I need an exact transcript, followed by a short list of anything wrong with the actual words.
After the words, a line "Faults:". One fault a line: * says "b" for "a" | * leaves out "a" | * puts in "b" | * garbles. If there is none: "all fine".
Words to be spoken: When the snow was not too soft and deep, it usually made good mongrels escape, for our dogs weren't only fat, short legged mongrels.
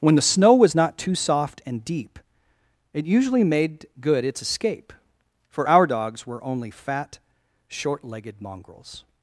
When the snow was not too soft and deep, it usually made good its escape, for our dogs were only fat, short legged mongrels.
Faults:
* says "its" for "mongrels"
* says "were" for "weren't"